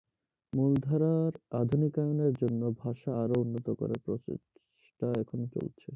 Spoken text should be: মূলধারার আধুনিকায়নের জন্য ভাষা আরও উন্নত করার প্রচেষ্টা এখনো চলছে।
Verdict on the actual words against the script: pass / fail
pass